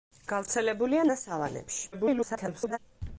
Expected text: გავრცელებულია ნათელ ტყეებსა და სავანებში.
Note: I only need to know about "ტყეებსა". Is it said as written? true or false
false